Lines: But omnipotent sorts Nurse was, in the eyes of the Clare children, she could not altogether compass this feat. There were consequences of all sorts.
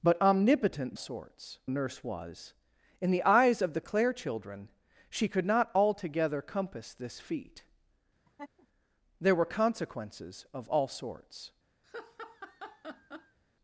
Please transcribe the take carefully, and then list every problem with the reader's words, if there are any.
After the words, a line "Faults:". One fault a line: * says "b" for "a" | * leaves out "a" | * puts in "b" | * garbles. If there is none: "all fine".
But omnipotent sorts Nurse was, in the eyes of the Clare children, she could not altogether compass this feat. There were consequences of all sorts.
Faults:
all fine